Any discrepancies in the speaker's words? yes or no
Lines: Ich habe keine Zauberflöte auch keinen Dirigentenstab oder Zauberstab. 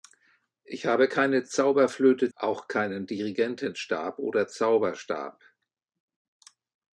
no